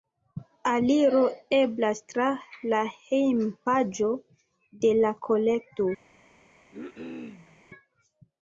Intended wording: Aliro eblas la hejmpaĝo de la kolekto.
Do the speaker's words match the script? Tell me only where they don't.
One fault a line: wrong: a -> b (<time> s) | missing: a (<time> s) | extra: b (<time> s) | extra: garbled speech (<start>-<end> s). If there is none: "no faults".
extra: tra (2.1 s)